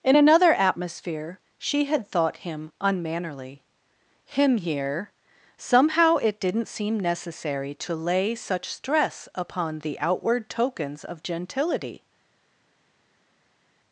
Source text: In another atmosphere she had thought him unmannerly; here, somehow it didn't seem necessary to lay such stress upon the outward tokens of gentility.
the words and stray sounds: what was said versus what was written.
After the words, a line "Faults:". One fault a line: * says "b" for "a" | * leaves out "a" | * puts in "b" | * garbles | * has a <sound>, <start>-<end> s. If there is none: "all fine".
In another atmosphere she had thought him unmannerly; him here, somehow it didn't seem necessary to lay such stress upon the outward tokens of gentility.
Faults:
* puts in "him"